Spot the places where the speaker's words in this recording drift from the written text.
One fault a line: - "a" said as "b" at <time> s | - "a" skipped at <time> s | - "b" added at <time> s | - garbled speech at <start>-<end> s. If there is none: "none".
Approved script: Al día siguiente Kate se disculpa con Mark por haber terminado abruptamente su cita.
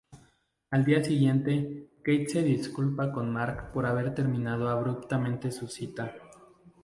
none